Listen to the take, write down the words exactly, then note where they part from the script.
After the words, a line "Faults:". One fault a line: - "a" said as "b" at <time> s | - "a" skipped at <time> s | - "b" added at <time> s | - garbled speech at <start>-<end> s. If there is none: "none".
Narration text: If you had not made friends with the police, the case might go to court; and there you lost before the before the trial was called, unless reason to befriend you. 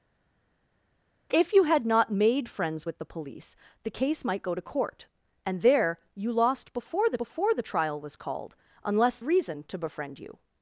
If you had not made friends with the police, the case might go to court; and there you lost before the before the trial was called, unless reason to befriend you.
Faults:
none